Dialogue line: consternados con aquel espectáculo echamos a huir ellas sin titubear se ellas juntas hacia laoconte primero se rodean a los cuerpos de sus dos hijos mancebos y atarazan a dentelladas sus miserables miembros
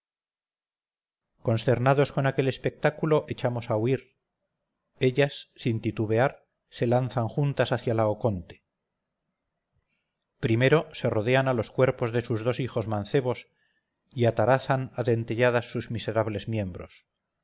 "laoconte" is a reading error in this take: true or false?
false